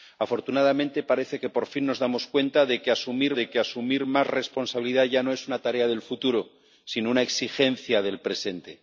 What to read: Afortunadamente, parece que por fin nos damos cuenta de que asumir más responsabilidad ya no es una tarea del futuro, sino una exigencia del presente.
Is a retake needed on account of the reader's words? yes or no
yes